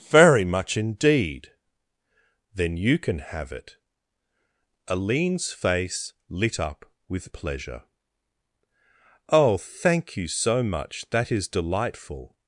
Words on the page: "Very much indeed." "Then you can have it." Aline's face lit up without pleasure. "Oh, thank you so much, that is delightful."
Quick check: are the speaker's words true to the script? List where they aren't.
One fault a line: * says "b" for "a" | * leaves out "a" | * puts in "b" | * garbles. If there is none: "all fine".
* says "with" for "without"